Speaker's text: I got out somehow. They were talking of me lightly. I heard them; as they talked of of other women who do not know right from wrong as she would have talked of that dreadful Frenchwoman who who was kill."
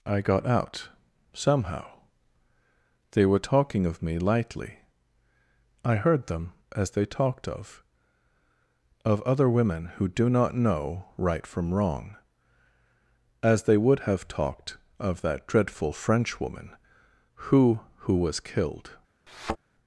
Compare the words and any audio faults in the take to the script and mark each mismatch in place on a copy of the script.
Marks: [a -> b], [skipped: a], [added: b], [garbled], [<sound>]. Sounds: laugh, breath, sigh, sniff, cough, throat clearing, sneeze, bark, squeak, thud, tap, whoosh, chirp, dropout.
I got out somehow. They were talking of me lightly. I heard them; as they talked of of other women who do not know right from wrong as [she -> they] would have talked of that dreadful Frenchwoman who who was [kill." -> killed] [thud]